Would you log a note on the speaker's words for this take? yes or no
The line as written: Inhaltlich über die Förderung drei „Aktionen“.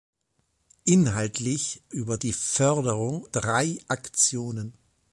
no